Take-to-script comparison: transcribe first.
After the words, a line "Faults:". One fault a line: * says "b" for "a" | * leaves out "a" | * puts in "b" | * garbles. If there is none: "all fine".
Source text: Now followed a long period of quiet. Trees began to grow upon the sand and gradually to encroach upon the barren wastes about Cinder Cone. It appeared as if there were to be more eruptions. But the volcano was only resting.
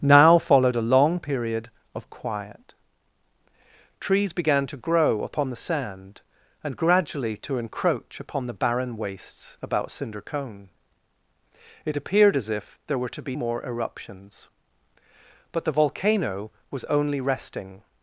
Now followed a long period of quiet. Trees began to grow upon the sand and gradually to encroach upon the barren wastes about Cinder Cone. It appeared as if there were to be more eruptions. But the volcano was only resting.
Faults:
all fine